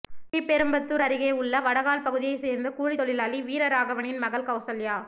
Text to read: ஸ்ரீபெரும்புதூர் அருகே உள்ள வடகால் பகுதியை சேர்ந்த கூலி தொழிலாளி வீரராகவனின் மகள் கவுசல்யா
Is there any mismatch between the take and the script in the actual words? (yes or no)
no